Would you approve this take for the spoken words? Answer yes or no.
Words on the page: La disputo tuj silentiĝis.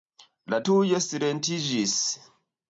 no